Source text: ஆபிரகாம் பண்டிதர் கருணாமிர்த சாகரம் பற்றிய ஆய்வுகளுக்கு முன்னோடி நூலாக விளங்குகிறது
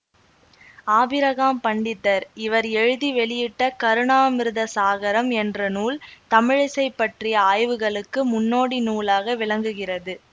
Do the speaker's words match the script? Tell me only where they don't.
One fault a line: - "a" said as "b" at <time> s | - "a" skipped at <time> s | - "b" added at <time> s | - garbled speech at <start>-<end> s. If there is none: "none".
- "இவர் எழுதி வெளியிட்ட" added at 2.4 s
- "என்ற நூல் தமிழிசை" added at 5.4 s